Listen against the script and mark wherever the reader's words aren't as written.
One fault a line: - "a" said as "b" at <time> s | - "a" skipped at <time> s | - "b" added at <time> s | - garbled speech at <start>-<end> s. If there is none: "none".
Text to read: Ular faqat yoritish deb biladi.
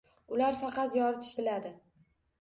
- "deb" skipped at 1.4 s